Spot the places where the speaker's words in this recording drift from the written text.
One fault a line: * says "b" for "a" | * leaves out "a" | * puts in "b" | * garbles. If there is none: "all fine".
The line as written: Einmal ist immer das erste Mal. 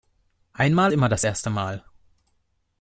* leaves out "ist"